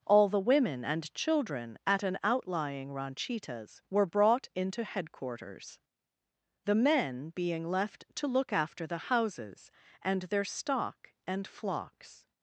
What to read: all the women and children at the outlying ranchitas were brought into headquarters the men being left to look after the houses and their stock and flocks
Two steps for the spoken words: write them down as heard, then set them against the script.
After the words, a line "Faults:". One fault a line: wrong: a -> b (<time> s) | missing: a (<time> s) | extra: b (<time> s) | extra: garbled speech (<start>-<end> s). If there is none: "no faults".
all the women and children at an outlying ranchitas were brought into headquarters the men being left to look after the houses and their stock and flocks
Faults:
wrong: the -> an (2.0 s)